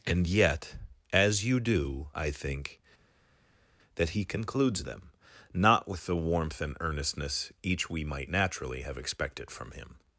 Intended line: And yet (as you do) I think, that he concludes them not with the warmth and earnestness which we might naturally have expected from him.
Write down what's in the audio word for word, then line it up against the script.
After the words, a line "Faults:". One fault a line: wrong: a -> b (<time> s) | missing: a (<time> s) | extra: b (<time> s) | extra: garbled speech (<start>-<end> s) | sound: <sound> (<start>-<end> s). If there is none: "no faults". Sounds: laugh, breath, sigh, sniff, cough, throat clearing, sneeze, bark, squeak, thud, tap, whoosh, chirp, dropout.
And yet (as you do) I think, that he concludes them not with the warmth and earnestness each we might naturally have expected from him.
Faults:
wrong: which -> each (7.6 s)